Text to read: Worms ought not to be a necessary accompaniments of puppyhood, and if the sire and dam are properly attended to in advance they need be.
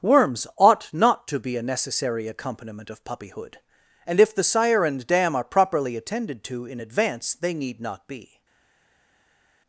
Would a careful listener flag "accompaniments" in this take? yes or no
yes